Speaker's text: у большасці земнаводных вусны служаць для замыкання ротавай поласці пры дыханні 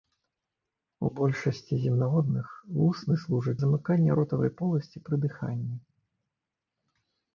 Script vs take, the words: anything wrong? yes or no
yes